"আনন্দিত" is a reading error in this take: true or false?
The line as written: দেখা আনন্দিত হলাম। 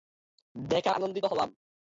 false